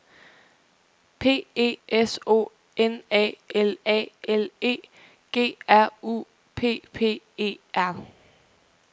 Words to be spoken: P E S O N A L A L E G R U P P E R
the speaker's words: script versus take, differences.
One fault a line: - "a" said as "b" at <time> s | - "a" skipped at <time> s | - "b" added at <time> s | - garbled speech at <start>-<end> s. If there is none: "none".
none